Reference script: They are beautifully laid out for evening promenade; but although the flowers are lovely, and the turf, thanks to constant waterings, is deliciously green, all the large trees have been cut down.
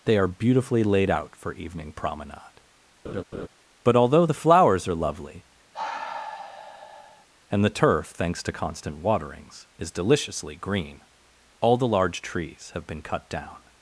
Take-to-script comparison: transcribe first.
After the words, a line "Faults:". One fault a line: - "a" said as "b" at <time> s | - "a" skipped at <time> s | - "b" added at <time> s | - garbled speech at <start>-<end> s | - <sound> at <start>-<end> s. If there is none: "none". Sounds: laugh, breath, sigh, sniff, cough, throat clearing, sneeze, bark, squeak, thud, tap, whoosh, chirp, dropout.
They are beautifully laid out for evening promenade; but although the flowers are lovely, and the turf, thanks to constant waterings, is deliciously green, all the large trees have been cut down.
Faults:
- laugh at 3.0-3.5 s
- sigh at 5.7-7.3 s